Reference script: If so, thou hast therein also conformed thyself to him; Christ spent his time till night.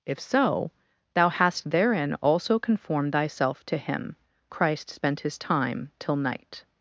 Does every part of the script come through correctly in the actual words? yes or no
yes